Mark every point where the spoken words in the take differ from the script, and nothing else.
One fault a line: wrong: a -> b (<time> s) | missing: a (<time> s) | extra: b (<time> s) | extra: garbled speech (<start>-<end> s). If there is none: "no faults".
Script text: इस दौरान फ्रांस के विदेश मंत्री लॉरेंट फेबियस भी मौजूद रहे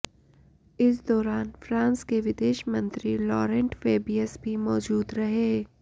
no faults